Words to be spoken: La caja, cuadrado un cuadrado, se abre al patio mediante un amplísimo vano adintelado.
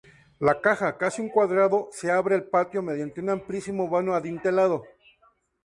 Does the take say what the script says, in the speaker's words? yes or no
no